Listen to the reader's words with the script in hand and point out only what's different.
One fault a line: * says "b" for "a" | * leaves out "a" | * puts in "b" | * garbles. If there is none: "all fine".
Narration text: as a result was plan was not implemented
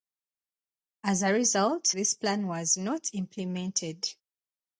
* says "this" for "was"